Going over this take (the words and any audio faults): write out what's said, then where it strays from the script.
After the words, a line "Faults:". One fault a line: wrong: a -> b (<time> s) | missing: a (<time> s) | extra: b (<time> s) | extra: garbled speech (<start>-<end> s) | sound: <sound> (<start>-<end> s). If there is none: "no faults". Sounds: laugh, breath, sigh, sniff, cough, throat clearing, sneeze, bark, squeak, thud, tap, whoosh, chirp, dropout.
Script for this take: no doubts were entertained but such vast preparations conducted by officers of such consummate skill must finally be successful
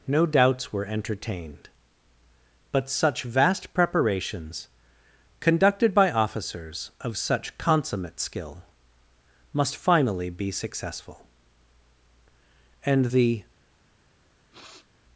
no doubts were entertained but such vast preparations conducted by officers of such consummate skill must finally be successful and the
Faults:
extra: and the (12.8 s)
sound: sniff (14.5-14.9 s)